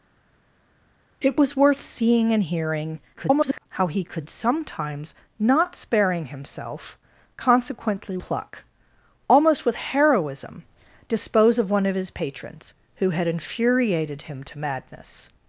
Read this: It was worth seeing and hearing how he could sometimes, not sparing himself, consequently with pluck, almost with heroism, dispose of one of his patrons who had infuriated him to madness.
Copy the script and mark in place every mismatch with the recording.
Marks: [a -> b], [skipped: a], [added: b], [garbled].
It was worth seeing and hearing [garbled] how he could sometimes, not sparing himself, consequently [skipped: with] pluck, almost with heroism, dispose of one of his patrons who had infuriated him to madness.